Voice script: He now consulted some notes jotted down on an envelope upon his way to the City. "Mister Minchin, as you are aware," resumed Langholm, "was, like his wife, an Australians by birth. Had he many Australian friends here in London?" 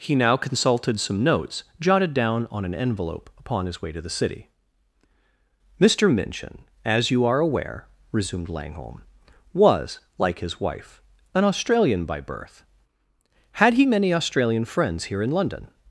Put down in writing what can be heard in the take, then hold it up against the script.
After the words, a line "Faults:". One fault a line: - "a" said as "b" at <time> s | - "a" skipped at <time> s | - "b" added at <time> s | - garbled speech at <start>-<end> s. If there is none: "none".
He now consulted some notes jotted down on an envelope upon his way to the City. "Mister Minchin, as you are aware," resumed Langholm, "was, like his wife, an Australian by birth. Had he many Australian friends here in London?"
Faults:
- "Australians" said as "Australian" at 11.4 s